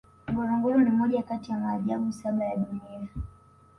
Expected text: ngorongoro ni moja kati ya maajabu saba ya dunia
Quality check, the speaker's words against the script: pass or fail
pass